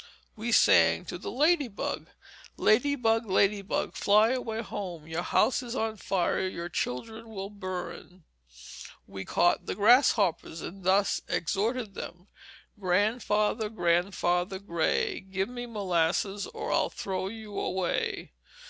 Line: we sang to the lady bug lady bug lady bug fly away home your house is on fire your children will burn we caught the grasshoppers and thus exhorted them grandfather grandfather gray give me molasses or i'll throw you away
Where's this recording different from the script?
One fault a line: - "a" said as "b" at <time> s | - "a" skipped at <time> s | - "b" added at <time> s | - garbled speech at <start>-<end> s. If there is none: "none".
none